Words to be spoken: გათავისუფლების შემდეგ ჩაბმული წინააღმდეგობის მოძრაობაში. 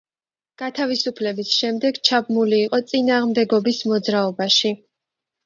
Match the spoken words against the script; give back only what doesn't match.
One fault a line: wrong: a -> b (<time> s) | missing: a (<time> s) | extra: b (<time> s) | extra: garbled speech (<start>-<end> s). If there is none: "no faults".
extra: იყო (2.7 s)